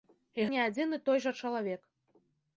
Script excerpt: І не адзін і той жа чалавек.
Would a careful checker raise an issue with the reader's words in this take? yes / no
no